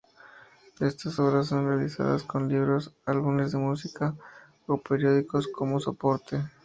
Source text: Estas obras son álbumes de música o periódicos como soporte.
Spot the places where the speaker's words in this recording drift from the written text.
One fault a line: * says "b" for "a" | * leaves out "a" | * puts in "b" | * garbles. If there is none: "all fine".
* puts in "realizadas con libros"